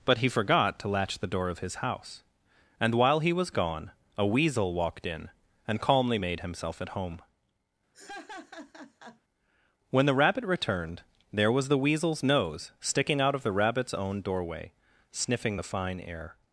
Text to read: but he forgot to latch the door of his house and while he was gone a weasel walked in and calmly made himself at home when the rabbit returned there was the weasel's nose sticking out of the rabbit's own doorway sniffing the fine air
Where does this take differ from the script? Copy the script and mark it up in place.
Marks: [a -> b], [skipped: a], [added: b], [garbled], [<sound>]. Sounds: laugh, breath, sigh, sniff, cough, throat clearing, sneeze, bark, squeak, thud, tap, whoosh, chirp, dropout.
but he forgot to latch the door of his house and while he was gone a weasel walked in and calmly made himself at home [laugh] when the rabbit returned there was the weasel's nose sticking out of the rabbit's own doorway sniffing the fine air